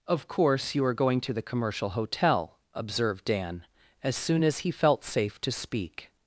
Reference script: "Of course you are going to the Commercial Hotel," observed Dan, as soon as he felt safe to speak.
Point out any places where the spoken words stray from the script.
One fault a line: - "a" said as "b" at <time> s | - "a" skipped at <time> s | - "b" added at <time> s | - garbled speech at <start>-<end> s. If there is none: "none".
none